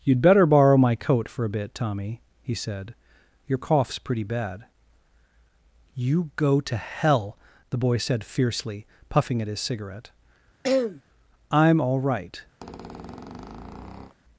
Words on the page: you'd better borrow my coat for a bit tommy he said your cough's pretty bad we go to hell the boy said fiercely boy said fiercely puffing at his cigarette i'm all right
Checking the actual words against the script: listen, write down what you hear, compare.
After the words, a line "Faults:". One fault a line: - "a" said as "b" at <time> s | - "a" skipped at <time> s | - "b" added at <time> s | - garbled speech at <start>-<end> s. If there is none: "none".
you'd better borrow my coat for a bit tommy he said your cough's pretty bad you go to hell the boy said fiercely puffing at his cigarette i'm all right
Faults:
- "we" said as "you" at 5.9 s
- "boy said fiercely" skipped at 8.9 s